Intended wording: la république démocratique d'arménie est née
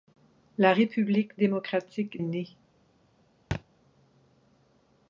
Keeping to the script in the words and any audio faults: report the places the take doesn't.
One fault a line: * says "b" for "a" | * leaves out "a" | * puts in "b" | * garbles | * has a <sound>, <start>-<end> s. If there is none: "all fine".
* leaves out "d'arménie est"
* has a thud, 3.5-3.6 s